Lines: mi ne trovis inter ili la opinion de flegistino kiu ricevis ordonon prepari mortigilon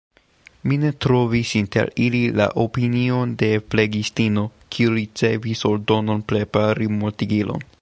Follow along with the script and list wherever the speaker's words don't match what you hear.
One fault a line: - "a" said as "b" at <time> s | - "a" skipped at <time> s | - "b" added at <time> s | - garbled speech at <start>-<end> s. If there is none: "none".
none